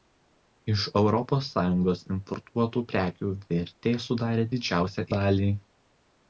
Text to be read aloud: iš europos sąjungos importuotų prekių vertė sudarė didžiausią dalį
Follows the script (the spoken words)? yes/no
yes